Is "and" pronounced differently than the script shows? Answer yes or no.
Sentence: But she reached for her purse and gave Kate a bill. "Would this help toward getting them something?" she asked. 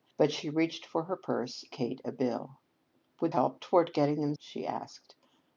yes